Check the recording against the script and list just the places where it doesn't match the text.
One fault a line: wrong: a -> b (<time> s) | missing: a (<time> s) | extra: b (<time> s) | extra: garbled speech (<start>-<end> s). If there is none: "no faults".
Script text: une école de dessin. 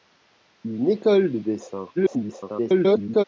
extra: garbled speech (1.9-3.2 s)